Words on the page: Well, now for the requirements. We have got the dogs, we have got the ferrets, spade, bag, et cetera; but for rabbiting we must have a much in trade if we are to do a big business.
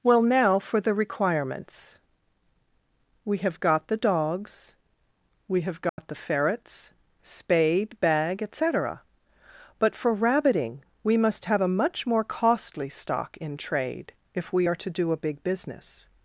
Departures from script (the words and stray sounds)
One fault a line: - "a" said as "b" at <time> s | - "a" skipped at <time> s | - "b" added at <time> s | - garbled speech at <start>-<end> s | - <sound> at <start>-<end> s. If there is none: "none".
- dropout at 5.9-6.0 s
- "more costly stock" added at 12.1 s